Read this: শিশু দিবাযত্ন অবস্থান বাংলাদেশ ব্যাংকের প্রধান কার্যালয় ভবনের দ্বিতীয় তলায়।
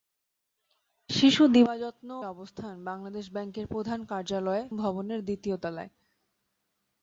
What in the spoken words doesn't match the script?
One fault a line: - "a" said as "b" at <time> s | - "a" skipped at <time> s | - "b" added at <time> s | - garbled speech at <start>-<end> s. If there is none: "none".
none